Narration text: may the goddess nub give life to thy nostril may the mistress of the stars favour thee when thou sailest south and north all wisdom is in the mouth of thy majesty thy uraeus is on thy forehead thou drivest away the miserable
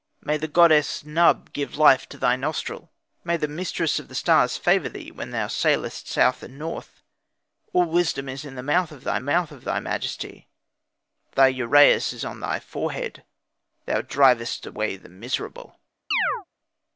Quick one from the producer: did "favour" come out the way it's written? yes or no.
yes